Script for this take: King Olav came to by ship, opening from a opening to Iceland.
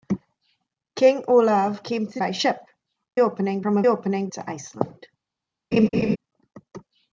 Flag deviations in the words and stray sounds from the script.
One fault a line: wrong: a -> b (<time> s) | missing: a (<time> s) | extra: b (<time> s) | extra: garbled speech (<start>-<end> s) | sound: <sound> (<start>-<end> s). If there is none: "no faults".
sound: laugh (5.7-6.2 s)